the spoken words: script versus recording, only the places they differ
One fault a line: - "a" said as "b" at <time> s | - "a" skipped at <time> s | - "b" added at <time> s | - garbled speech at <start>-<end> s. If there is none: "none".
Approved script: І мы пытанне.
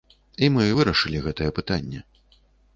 - "вырашылі гэтае" added at 0.8 s